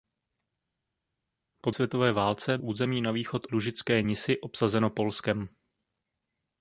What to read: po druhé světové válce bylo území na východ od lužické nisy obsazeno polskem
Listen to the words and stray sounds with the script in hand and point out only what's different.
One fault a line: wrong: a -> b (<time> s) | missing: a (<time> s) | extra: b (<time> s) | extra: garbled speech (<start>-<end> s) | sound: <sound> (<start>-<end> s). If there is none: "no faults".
missing: druhé (1.7 s)
missing: bylo (2.6 s)
missing: od (3.5 s)